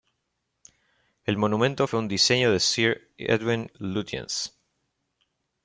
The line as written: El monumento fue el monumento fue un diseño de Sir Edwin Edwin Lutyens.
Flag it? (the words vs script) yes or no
yes